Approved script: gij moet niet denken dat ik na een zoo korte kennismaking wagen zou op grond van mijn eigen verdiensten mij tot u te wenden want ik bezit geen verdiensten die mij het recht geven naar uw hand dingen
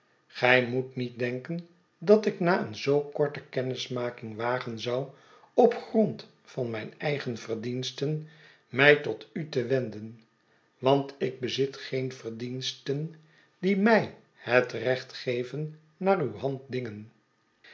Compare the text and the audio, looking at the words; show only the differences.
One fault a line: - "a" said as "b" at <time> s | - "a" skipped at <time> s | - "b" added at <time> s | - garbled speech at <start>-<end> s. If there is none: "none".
none